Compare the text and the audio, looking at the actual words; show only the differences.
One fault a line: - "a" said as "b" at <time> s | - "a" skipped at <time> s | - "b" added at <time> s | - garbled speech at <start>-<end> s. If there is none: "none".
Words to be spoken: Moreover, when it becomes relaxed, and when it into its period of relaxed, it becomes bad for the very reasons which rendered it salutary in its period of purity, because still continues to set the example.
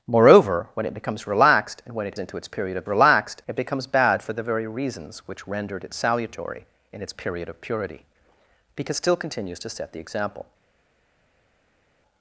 none